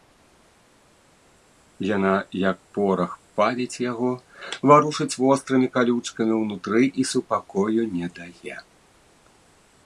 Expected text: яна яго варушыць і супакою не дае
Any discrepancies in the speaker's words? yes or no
yes